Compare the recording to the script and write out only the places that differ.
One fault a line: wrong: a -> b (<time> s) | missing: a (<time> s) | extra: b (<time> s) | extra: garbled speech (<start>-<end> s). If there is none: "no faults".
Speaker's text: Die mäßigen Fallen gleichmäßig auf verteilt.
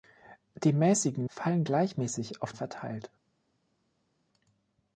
no faults